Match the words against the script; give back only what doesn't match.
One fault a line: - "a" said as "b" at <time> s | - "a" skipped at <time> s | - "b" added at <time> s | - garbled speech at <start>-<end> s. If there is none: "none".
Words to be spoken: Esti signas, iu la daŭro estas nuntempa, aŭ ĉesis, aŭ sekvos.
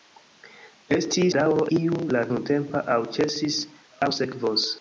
- "signas" said as "daŭro" at 1.4 s
- "daŭro estas" skipped at 2.2 s